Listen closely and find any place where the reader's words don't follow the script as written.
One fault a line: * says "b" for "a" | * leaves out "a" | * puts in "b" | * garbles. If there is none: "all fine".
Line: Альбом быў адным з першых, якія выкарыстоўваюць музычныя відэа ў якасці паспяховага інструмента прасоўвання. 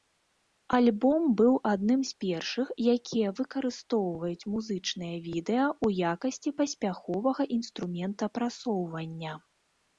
all fine